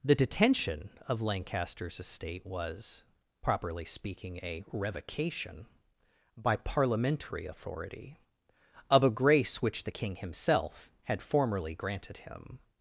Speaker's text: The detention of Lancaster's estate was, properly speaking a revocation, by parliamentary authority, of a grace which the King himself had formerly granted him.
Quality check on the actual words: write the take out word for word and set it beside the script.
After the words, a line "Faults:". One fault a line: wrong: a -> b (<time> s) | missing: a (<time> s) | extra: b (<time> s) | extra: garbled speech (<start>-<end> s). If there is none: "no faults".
The detention of Lancaster's estate was, properly speaking a revocation, by parliamentary authority, of a grace which the King himself had formerly granted him.
Faults:
no faults